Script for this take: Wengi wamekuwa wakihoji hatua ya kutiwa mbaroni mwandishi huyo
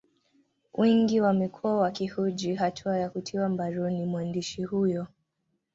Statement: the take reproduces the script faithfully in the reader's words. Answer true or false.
true